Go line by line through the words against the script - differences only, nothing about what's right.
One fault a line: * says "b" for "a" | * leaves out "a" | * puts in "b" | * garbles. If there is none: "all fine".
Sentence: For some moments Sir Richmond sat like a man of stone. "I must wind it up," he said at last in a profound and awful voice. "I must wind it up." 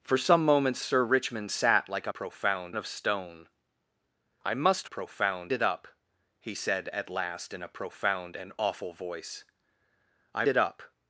* says "profound" for "man"
* says "profound" for "wind"
* leaves out "must wind"